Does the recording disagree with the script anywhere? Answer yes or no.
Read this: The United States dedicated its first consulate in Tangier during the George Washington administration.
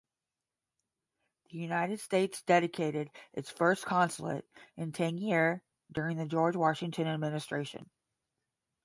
no